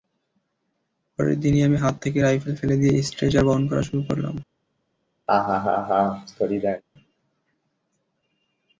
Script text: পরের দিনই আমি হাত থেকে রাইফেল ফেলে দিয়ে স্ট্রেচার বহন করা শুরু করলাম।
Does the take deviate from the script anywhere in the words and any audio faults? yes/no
yes